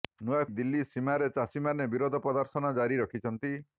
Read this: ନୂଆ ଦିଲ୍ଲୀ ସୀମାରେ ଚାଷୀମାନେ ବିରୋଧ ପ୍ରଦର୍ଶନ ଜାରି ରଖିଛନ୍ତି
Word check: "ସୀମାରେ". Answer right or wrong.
right